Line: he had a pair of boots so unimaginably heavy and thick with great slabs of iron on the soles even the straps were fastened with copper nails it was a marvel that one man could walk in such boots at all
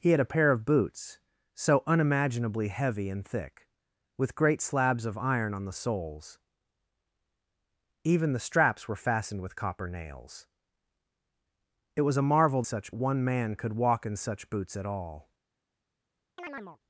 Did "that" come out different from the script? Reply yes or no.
yes